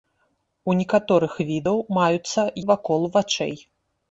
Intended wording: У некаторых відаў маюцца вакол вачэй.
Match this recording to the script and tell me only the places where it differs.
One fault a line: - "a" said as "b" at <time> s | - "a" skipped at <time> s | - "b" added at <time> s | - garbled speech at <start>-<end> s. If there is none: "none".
none